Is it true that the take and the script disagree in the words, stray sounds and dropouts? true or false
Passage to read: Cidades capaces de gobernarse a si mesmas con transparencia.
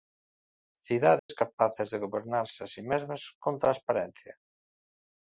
true